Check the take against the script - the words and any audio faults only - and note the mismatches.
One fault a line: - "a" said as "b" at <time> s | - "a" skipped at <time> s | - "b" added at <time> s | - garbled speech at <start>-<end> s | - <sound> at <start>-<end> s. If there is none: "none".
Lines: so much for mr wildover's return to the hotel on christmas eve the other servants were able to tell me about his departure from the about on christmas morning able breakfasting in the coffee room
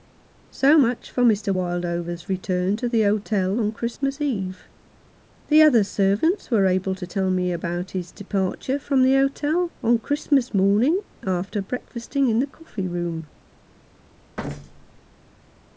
- "about" said as "hotel" at 9.1 s
- "able" said as "after" at 11.2 s
- thud at 14.4-15.0 s